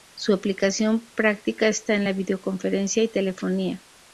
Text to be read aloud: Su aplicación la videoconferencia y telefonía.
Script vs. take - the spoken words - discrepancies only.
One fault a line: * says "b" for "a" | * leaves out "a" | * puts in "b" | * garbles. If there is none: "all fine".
* puts in "práctica está en"